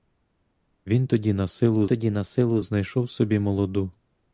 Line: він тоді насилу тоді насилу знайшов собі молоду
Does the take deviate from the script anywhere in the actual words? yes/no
no